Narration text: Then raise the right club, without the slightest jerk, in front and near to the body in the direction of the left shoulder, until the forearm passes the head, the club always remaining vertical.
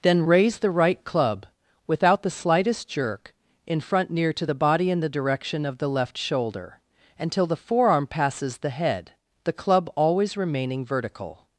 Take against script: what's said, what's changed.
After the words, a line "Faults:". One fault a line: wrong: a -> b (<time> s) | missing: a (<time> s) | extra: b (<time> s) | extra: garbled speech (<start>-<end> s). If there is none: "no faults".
Then raise the right club, without the slightest jerk, in front near to the body in the direction of the left shoulder, until the forearm passes the head, the club always remaining vertical.
Faults:
missing: and (4.1 s)